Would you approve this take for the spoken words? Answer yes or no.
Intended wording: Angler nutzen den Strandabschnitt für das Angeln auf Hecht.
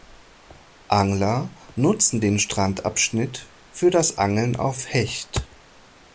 yes